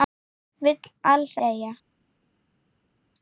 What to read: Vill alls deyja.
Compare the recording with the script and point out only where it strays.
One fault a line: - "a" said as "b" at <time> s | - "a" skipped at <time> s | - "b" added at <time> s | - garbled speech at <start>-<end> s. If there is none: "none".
none